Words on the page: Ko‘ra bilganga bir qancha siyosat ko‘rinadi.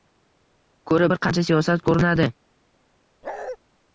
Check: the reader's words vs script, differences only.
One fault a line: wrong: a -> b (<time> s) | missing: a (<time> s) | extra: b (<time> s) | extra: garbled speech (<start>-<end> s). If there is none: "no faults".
missing: bilganga (1.1 s)